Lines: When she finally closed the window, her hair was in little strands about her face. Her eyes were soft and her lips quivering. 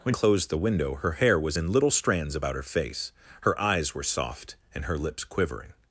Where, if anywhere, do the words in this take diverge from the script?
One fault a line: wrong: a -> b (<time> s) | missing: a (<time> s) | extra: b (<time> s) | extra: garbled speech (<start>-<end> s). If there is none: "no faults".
missing: she finally (0.1 s)